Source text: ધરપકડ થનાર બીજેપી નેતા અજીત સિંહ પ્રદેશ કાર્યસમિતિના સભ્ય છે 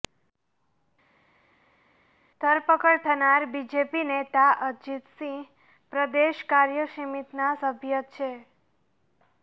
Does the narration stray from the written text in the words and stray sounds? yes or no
no